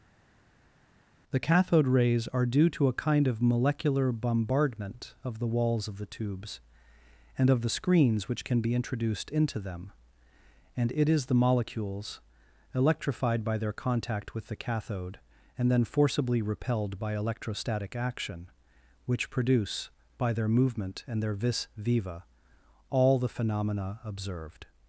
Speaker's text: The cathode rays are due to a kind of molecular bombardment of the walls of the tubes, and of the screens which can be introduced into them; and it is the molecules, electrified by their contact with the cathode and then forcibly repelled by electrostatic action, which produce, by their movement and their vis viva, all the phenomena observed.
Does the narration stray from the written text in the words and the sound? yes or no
no